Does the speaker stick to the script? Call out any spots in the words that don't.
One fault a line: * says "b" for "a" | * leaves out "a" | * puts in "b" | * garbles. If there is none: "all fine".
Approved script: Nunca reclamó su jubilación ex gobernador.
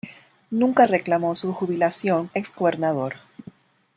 all fine